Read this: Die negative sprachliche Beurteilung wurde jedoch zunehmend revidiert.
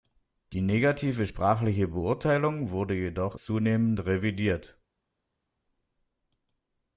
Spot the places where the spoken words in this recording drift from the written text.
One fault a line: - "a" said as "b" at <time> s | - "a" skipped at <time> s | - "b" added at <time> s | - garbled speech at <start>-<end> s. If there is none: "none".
none